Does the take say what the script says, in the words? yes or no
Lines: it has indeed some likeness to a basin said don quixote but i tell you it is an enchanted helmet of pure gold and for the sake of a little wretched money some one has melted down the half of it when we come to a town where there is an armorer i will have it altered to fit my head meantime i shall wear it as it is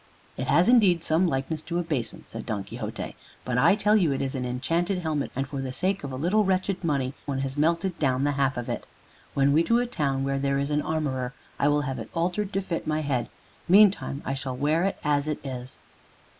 no